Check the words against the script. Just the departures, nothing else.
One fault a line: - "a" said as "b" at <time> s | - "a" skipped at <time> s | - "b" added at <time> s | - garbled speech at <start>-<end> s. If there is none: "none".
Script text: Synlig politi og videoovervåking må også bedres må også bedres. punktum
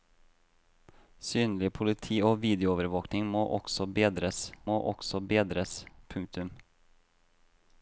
none